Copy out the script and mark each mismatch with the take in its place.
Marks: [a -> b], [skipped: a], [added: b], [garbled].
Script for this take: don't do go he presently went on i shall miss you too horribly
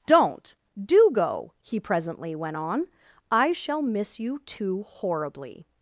don't do go he presently went on i shall miss you too horribly